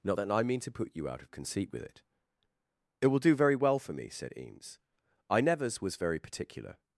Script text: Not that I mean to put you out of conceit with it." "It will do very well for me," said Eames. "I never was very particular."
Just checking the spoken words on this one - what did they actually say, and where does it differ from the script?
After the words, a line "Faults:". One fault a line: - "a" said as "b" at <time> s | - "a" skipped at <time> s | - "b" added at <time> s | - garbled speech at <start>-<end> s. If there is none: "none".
Not that I mean to put you out of conceit with it." "It will do very well for me," said Eames. "I nevers was very particular."
Faults:
- "never" said as "nevers" at 5.4 s